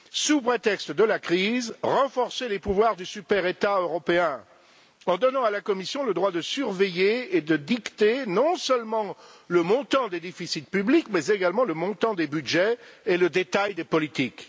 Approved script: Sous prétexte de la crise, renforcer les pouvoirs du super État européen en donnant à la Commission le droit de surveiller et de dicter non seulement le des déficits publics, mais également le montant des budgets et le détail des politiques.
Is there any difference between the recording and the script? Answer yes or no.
yes